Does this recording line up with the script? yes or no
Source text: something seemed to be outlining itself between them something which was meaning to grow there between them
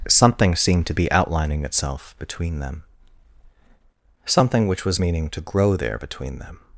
yes